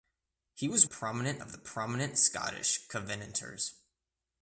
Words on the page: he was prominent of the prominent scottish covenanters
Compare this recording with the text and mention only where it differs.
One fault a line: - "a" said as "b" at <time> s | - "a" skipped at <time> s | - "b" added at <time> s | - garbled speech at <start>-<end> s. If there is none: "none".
none